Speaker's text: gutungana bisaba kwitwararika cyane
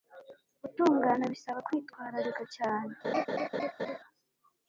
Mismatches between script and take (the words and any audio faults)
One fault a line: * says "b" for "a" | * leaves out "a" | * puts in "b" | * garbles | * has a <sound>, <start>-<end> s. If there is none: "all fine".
* has a laugh, 3.0-4.0 s